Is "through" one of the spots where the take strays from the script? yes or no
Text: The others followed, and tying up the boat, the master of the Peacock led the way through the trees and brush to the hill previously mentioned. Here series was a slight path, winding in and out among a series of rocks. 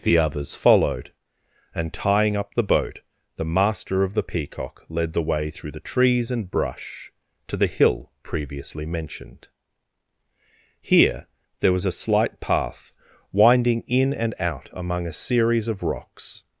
no